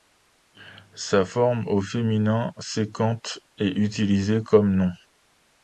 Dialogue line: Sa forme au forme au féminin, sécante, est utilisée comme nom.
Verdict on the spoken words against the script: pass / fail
fail